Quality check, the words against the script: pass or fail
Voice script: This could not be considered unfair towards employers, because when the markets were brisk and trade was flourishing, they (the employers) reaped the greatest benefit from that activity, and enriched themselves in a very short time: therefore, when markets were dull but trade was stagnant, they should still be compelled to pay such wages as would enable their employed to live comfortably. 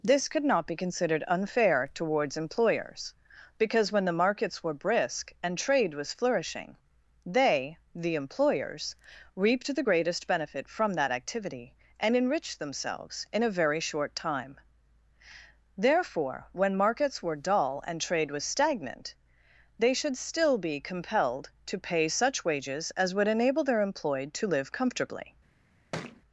fail